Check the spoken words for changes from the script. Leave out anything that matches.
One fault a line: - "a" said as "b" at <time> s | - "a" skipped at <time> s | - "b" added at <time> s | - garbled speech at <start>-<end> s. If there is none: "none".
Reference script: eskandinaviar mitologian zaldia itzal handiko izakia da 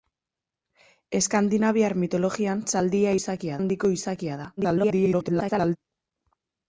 - "itzal" said as "izakia" at 3.2 s
- garbled speech at 4.6-5.8 s